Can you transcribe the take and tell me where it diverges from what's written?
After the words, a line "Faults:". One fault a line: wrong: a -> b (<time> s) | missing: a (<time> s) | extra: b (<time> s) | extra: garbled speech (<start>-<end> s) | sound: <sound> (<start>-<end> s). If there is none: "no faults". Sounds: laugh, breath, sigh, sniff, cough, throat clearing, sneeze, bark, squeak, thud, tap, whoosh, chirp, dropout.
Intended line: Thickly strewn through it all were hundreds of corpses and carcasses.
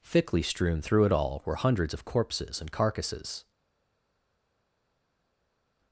Thickly strewn through it all were hundreds of corpses and carcasses.
Faults:
no faults